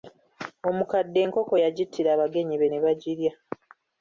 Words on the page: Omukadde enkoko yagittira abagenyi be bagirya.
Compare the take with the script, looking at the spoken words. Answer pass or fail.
fail